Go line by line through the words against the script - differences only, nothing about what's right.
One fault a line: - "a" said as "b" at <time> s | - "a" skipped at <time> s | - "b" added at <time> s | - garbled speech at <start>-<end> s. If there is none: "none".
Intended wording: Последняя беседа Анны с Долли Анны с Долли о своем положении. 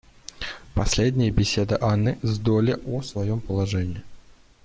- "Анны с Долли" skipped at 2.8 s